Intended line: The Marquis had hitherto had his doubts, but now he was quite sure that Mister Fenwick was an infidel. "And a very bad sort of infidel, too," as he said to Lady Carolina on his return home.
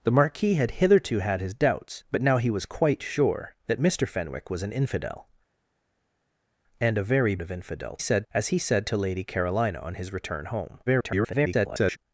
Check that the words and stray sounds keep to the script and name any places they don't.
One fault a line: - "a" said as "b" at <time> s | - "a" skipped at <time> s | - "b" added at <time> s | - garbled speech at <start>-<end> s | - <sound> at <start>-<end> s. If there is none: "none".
- "bad sort" skipped at 7.4 s
- "too" said as "said" at 8.0 s
- garbled speech at 10.9-12.0 s